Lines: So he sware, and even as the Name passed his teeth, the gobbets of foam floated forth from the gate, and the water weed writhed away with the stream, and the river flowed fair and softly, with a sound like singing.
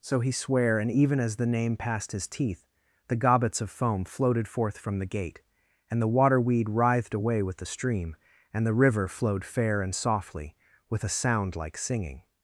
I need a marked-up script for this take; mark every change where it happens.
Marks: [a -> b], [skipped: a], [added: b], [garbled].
So he sware, and even as the Name passed his teeth, the gobbets of foam floated forth from the gate, and the water weed writhed away with the stream, and the river flowed fair and softly, with a sound like singing.